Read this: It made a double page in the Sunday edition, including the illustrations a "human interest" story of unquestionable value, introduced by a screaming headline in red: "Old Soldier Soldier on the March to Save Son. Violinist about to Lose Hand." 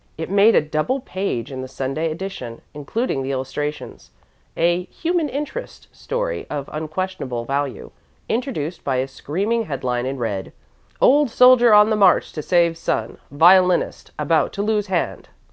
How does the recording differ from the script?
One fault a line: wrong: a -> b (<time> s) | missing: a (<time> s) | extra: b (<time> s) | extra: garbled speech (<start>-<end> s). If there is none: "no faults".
missing: Soldier (11.7 s)